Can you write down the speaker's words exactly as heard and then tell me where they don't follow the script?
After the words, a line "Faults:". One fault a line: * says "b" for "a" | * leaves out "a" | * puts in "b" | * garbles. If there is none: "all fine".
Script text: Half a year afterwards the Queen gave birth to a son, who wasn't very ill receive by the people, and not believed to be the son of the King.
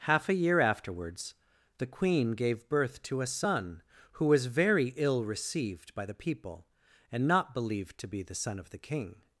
Half a year afterwards the Queen gave birth to a son, who was very ill received by the people, and not believed to be the son of the King.
Faults:
* says "was" for "wasn't"
* says "received" for "receive"